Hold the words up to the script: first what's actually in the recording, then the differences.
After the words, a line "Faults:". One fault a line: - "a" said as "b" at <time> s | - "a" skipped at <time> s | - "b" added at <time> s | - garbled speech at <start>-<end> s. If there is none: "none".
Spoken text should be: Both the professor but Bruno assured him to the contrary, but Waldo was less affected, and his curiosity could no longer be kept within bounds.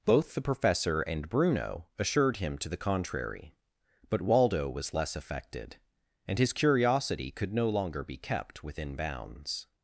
Both the professor and Bruno assured him to the contrary, but Waldo was less affected, and his curiosity could no longer be kept within bounds.
Faults:
- "but" said as "and" at 1.0 s